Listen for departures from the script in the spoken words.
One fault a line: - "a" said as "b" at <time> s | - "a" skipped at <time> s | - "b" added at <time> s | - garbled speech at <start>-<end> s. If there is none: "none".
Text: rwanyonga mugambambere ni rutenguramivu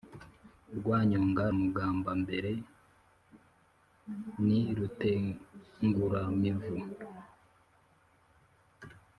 none